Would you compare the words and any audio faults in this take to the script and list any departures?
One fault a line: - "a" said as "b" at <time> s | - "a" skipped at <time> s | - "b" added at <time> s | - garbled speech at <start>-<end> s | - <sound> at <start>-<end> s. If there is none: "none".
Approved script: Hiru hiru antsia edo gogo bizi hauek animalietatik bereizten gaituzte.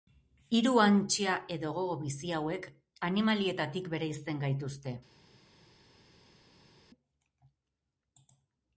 - "hiru" skipped at 0.7 s